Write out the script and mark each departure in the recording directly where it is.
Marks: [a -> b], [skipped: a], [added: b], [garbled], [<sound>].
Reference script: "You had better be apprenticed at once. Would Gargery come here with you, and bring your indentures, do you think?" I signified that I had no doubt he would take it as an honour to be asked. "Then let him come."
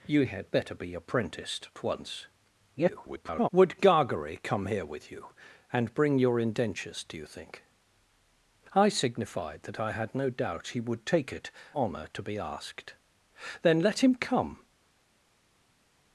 "You had better be apprenticed at once. [garbled] Would Gargery come here with you, and bring your indentures, do you think?" I signified that I had no doubt he would take it [skipped: as an] honour to be asked. "Then let him come."